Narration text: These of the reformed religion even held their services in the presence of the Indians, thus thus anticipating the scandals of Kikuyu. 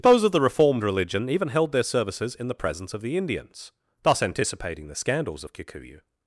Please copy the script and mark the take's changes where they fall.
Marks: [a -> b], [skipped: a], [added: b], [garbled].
[These -> Those] of the reformed religion even held their services in the presence of the Indians, thus [skipped: thus] anticipating the scandals of Kikuyu.